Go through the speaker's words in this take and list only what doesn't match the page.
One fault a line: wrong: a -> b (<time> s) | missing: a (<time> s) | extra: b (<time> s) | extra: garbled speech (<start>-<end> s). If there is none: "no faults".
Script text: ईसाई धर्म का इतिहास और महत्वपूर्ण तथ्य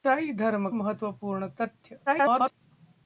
missing: का इतिहास और (0.7 s)
extra: garbled speech (2.1-2.6 s)